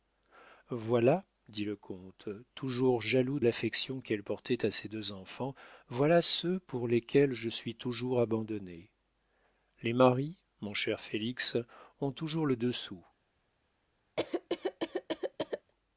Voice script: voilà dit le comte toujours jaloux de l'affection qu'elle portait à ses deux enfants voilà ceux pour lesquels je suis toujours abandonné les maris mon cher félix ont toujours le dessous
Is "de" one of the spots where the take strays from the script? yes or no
yes